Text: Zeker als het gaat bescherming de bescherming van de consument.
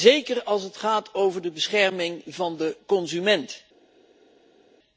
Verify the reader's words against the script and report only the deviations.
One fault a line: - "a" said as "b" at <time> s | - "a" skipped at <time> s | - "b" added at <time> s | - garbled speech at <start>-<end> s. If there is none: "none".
- "bescherming" said as "over" at 1.1 s